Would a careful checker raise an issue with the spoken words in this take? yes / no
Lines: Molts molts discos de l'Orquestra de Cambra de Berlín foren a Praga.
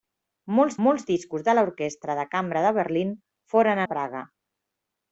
no